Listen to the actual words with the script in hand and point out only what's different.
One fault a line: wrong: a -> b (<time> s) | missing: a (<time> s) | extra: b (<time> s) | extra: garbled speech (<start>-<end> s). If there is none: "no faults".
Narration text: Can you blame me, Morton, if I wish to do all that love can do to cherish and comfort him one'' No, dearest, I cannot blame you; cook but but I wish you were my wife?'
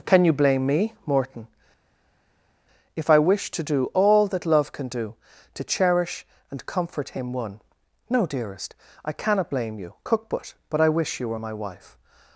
no faults